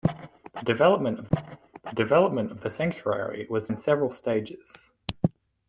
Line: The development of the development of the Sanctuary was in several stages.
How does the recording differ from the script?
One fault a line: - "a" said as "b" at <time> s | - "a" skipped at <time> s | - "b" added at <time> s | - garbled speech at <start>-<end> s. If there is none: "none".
none